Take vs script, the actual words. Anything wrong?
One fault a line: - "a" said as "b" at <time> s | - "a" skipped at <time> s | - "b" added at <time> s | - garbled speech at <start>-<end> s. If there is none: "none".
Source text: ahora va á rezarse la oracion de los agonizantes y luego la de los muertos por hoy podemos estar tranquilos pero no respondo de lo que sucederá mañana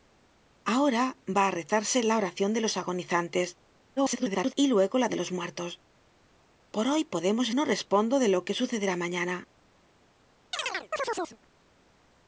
- garbled speech at 4.0-4.5 s
- "estar tranquilos pero" skipped at 7.5 s